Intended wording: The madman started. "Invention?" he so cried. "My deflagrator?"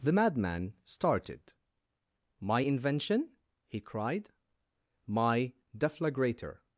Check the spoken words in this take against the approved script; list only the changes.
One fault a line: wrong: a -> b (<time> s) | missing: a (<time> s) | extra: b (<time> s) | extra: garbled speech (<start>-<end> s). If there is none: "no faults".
extra: My (2.4 s)
missing: so (3.8 s)